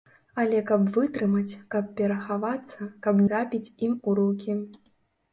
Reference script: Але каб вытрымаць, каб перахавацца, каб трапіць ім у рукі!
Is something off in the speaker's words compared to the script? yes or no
no